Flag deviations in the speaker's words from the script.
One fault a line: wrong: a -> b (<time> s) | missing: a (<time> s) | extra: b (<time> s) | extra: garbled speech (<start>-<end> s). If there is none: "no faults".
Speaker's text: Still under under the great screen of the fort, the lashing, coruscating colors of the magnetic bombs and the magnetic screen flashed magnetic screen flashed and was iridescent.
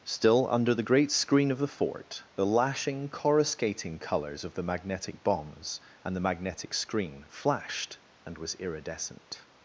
missing: under (0.7 s)
missing: magnetic screen flashed (8.0 s)